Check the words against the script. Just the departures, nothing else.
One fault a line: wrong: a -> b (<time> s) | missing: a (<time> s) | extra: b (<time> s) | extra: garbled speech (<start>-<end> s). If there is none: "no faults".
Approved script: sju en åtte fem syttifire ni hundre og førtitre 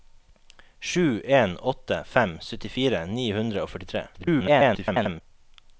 extra: garbled speech (4.1-5.2 s)